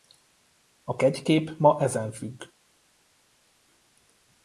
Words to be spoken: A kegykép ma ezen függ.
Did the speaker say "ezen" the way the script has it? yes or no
yes